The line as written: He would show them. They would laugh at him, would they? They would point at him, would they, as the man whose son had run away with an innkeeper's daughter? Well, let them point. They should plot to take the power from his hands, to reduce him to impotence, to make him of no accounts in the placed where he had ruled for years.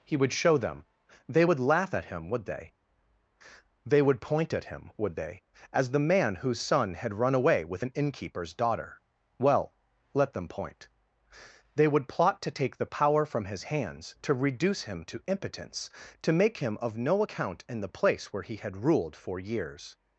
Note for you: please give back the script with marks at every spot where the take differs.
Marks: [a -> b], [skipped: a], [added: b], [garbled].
He would show them. They would laugh at him, would they? They would point at him, would they, as the man whose son had run away with an innkeeper's daughter? Well, let them point. They [should -> would] plot to take the power from his hands, to reduce him to impotence, to make him of no [accounts -> account] in the [placed -> place] where he had ruled for years.